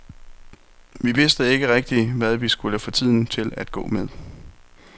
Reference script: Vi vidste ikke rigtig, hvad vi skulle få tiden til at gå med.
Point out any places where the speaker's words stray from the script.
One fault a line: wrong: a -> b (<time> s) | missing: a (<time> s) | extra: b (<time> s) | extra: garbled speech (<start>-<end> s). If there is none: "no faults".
no faults